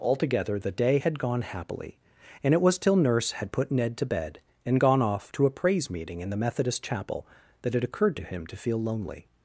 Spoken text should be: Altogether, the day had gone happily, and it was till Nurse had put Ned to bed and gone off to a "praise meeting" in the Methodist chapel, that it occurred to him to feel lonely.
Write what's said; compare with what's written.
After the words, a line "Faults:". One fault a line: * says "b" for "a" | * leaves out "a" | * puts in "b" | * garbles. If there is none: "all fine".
Altogether, the day had gone happily, and it was till Nurse had put Ned to bed and gone off to a "praise meeting" in the Methodist chapel, that it occurred to him to feel lonely.
Faults:
all fine